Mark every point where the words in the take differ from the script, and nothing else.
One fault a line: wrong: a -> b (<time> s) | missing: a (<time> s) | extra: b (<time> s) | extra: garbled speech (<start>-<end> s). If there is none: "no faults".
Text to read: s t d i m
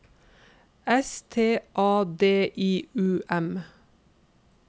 extra: a (1.8 s)
extra: u (3.0 s)